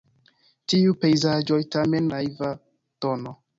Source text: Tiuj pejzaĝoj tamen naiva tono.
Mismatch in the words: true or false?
false